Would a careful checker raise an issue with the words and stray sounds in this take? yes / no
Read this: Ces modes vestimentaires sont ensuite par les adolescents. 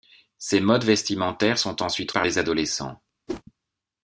yes